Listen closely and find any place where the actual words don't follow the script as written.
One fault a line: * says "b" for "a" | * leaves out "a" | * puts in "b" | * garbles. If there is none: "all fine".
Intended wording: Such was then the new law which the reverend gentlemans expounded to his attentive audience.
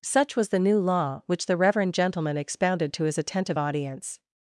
* leaves out "then"
* says "gentleman" for "gentlemans"